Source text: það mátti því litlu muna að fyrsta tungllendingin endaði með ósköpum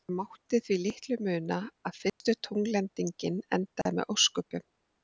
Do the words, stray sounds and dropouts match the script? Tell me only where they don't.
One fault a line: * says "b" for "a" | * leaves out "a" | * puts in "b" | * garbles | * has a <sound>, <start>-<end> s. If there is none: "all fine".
* has a dropout, 2.1-2.2 s
* has a dropout, 3.8-3.9 s